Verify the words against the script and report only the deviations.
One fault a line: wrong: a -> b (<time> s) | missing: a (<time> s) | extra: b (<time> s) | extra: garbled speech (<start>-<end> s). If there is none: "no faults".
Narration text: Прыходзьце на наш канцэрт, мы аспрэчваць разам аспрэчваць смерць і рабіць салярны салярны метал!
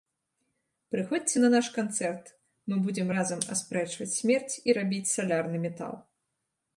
wrong: аспрэчваць -> будзем (2.9 s)
missing: салярны (5.6 s)